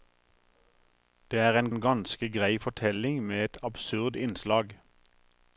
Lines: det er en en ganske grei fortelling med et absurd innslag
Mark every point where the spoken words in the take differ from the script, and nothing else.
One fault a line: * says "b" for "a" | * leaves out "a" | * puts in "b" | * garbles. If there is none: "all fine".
all fine